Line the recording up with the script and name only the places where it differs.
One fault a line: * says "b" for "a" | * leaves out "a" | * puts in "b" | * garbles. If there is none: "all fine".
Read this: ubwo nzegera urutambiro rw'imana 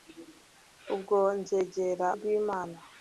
* leaves out "urutambiro"